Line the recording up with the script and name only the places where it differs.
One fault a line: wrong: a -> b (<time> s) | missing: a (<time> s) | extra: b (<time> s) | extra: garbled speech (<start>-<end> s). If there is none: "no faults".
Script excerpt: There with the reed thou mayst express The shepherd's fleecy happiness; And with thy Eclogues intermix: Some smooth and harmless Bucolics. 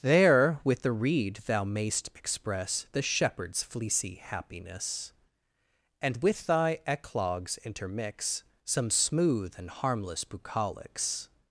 no faults